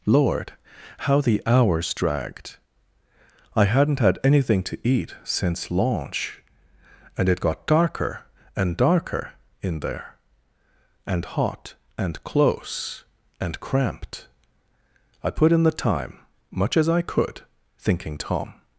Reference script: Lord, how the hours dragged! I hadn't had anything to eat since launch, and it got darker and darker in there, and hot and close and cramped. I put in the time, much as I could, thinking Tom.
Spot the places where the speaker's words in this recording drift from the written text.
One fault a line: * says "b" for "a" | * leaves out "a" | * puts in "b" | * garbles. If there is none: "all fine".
all fine